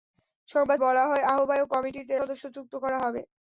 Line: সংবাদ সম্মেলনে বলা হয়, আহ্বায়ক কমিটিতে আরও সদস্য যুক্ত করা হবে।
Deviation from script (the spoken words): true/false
true